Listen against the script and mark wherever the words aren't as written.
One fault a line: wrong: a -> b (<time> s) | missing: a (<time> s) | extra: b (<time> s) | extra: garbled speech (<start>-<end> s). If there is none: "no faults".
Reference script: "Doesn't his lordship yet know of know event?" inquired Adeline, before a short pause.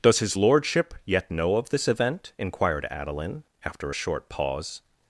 wrong: Doesn't -> Does (0.0 s)
wrong: know -> this (1.7 s)
wrong: before -> after (3.6 s)